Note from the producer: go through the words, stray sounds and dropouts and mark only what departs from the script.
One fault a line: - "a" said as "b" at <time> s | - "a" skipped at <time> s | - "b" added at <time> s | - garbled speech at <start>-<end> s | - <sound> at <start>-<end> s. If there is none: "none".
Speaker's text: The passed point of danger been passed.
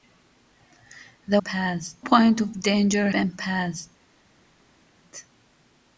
none